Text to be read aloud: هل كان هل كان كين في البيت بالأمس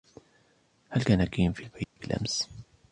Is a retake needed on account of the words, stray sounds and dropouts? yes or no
yes